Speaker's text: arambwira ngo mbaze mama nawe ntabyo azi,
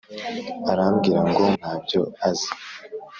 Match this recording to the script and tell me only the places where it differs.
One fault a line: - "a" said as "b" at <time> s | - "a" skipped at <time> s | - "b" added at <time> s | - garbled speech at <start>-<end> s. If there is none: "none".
- "mbaze mama nawe" skipped at 1.4 s